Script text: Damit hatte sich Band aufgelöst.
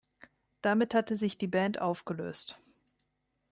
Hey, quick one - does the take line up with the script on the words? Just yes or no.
no